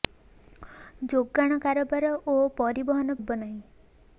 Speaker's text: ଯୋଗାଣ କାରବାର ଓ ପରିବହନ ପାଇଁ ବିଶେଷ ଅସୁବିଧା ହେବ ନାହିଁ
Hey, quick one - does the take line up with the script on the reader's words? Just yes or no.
no